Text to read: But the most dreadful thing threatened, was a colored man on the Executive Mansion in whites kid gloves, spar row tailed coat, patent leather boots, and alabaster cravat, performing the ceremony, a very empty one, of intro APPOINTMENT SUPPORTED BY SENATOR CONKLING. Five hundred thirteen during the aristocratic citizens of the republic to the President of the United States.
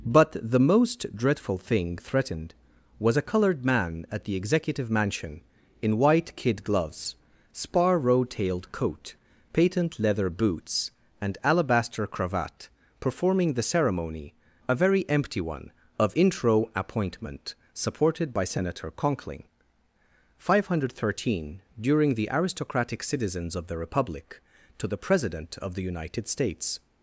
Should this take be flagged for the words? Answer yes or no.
yes